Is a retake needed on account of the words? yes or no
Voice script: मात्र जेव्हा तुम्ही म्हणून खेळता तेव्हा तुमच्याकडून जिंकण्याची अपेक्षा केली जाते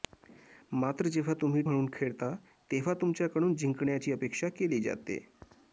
no